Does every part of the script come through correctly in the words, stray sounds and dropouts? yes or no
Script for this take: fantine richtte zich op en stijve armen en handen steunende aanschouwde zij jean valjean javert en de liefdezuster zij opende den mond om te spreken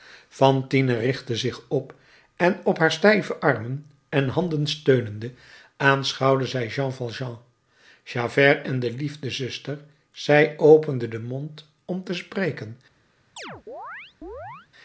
no